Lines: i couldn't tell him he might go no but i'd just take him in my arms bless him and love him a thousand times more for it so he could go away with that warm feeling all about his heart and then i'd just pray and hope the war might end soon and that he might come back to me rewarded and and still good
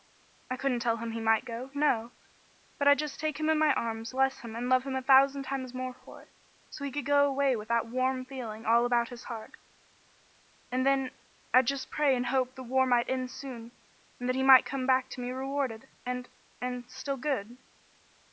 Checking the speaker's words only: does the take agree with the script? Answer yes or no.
yes